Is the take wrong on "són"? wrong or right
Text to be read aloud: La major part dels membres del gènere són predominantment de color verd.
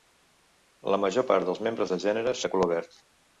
wrong